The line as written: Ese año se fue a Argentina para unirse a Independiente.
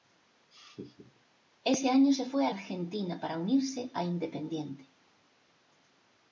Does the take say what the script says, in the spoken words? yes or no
yes